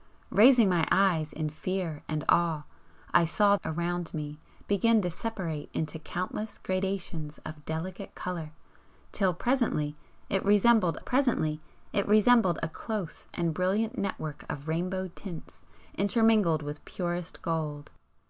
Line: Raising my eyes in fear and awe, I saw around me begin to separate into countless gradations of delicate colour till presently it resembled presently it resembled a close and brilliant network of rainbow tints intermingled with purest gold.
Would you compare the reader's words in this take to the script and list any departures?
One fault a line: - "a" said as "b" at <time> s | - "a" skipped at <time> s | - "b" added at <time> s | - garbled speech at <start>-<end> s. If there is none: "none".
none